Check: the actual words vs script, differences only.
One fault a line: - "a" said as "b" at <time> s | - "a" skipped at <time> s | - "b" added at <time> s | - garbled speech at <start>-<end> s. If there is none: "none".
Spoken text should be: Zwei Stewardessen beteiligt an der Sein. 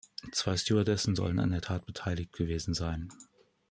- "beteiligt" said as "sollen" at 1.1 s
- "Tat beteiligt gewesen" added at 1.6 s